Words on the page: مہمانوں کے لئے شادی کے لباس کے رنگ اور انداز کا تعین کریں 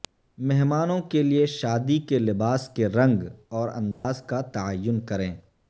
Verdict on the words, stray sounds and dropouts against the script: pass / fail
fail